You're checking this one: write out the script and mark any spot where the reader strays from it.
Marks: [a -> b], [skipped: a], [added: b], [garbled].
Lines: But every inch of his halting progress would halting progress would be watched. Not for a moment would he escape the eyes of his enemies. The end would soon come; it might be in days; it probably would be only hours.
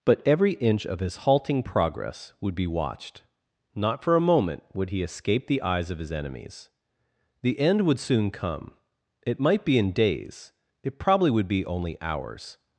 But every inch of his halting progress would [skipped: halting progress would] be watched. Not for a moment would he escape the eyes of his enemies. The end would soon come; it might be in days; it probably would be only hours.